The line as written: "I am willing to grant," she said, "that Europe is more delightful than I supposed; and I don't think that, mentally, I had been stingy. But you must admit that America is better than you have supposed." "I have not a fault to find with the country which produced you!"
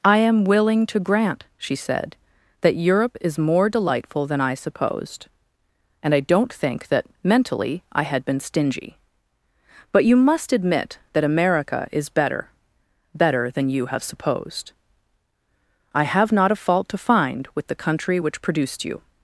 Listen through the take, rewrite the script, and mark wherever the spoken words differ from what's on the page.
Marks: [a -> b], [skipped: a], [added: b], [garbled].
"I am willing to grant," she said, "that Europe is more delightful than I supposed; and I don't think that, mentally, I had been stingy. But you must admit that America is better [added: better] than you have supposed." "I have not a fault to find with the country which produced you!"